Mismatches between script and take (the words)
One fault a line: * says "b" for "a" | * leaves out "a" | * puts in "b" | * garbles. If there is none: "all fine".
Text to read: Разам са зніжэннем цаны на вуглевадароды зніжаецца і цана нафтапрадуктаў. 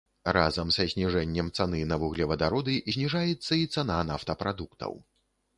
all fine